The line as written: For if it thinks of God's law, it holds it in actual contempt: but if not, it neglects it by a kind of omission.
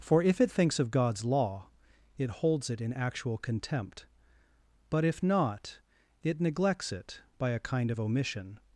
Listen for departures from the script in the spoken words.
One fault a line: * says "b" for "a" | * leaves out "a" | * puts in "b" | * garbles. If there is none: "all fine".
all fine